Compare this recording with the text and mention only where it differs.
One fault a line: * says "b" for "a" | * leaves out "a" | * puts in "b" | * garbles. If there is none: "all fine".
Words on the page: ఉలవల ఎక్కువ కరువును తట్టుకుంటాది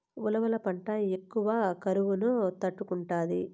* puts in "పంట"